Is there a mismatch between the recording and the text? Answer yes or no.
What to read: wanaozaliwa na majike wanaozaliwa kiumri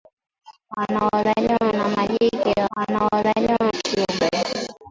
no